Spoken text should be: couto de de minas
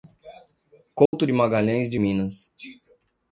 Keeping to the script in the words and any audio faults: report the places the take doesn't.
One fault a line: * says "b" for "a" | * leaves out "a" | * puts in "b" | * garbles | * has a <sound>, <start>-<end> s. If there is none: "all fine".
* has a dropout, 1.1-1.1 s
* puts in "magalhães"